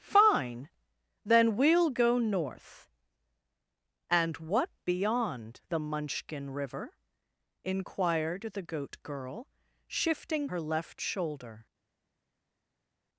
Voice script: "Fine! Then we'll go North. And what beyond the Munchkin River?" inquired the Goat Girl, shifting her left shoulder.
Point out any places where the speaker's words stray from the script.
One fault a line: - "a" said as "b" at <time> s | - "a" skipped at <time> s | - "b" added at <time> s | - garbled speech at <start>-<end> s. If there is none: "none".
none